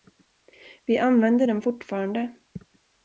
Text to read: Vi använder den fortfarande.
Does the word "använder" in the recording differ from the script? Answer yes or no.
no